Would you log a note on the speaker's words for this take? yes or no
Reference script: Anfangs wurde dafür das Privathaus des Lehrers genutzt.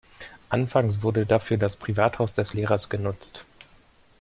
no